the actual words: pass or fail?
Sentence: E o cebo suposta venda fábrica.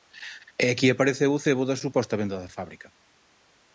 fail